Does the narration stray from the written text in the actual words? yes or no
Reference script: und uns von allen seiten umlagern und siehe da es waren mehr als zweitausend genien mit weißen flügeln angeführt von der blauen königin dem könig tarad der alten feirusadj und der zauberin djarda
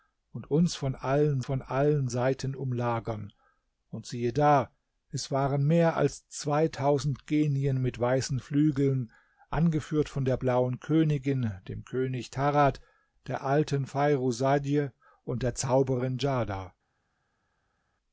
yes